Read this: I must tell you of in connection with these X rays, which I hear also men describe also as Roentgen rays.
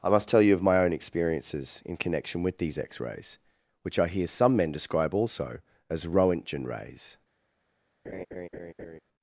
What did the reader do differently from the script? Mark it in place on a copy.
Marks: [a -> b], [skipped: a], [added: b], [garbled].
I must tell you of [added: my own experiences] in connection with these X rays, which I hear [also -> some] men describe also as Roentgen rays.